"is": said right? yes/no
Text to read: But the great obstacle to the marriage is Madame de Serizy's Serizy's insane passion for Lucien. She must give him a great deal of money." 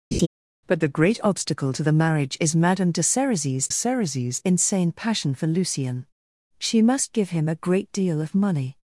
yes